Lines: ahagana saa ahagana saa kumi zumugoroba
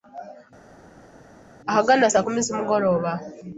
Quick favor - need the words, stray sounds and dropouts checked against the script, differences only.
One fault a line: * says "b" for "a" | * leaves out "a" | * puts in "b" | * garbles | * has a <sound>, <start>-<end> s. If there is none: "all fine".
* leaves out "ahagana saa"